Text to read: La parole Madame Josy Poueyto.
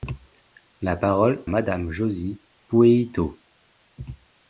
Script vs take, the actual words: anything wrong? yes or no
no